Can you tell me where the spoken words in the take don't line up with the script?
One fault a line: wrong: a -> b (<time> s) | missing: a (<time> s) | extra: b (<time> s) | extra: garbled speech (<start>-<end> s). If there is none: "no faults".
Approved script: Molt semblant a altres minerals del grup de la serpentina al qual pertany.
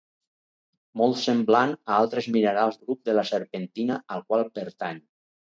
missing: del (2.8 s)